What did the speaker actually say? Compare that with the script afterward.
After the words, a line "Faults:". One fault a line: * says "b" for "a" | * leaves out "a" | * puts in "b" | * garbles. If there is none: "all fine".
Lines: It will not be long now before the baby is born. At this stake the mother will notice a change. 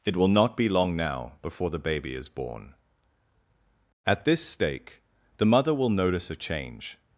It will not be long now before the baby is born. At this stake the mother will notice a change.
Faults:
all fine